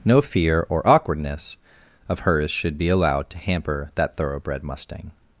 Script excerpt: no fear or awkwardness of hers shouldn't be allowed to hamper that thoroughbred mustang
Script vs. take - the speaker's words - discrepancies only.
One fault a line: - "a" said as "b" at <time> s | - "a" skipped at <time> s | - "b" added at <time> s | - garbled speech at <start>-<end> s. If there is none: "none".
- "shouldn't" said as "should" at 2.5 s